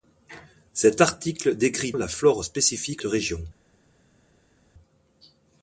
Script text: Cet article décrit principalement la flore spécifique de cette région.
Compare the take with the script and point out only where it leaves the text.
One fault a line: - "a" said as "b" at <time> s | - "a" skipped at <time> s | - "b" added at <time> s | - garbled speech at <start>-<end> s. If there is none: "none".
- "principalement" skipped at 1.9 s
- "de cette" skipped at 3.0 s